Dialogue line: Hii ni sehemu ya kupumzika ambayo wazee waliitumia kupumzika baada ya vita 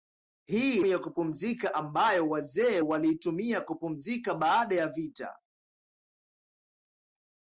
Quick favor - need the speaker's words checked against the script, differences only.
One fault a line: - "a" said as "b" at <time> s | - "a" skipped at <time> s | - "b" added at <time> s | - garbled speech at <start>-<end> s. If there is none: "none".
- "ni sehemu" skipped at 0.8 s